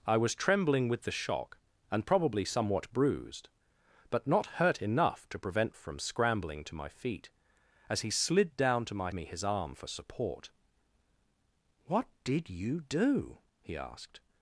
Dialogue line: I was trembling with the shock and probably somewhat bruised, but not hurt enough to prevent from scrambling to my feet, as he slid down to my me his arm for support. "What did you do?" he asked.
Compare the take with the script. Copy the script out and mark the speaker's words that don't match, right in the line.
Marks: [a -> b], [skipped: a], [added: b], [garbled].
I was trembling with the shock and probably somewhat bruised, but not hurt enough to prevent from scrambling to my feet, as he slid down to my me his arm for support. "What did you do?" he asked.